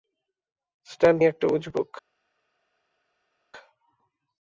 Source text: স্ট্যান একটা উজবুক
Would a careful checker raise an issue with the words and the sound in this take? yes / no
no